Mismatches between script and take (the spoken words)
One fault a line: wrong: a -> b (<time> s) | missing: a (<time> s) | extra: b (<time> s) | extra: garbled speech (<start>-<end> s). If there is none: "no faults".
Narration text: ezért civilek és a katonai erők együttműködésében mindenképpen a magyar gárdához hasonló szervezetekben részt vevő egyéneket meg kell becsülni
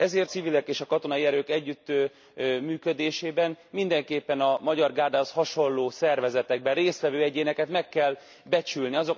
no faults